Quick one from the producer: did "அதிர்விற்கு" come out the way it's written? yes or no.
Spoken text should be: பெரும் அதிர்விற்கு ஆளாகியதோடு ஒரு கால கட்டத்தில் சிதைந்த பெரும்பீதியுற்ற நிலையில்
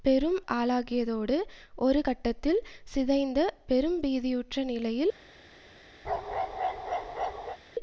no